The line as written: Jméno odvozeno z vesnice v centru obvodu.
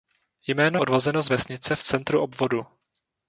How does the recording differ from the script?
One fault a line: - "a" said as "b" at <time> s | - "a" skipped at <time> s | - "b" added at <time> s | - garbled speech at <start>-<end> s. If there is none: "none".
none